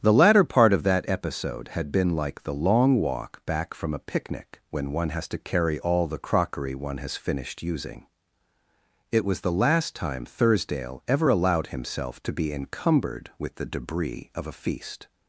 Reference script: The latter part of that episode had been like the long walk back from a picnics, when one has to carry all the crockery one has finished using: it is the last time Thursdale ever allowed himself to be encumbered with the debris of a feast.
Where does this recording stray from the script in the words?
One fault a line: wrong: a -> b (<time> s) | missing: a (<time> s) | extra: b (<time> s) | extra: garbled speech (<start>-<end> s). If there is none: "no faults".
wrong: picnics -> picnic (4.0 s)
wrong: is -> was (9.2 s)